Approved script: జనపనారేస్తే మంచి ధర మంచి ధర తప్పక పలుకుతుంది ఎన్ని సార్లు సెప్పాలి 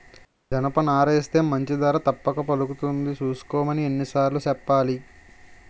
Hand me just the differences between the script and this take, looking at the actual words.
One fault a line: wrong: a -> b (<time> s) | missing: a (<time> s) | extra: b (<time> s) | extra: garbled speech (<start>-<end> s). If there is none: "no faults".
missing: మంచి ధర (2.0 s)
extra: సూసుకోమని (3.1 s)